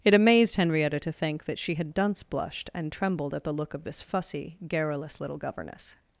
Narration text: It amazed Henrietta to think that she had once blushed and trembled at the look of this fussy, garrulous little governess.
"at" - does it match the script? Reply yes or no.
yes